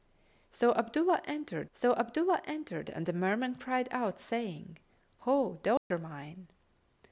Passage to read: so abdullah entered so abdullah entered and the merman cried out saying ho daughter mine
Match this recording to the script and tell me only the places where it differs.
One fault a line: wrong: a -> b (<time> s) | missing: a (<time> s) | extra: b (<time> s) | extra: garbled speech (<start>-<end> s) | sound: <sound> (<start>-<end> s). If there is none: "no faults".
sound: dropout (5.8-5.9 s)